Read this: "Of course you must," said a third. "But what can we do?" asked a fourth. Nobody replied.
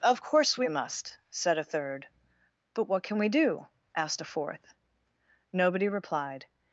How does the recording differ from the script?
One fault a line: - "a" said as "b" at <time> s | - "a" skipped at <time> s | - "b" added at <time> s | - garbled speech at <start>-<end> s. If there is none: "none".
- "you" said as "we" at 0.6 s